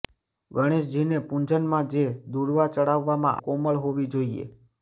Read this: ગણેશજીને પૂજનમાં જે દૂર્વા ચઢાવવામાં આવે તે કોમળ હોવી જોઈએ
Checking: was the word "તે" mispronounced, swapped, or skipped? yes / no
yes